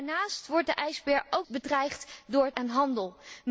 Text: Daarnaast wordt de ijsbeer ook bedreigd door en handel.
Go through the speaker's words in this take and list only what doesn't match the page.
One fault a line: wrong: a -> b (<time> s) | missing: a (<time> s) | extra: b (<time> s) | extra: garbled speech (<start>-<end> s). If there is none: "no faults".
no faults